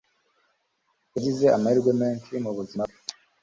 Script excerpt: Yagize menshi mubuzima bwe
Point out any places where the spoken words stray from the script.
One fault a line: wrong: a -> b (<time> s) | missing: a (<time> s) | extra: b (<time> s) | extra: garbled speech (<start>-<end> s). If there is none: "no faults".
extra: amahirwe (1.6 s)